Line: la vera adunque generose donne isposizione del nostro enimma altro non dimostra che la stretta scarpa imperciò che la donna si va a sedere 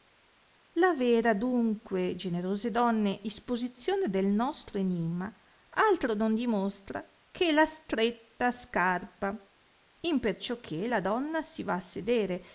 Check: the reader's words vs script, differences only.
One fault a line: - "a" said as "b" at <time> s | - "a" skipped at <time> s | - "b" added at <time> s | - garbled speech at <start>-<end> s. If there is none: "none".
none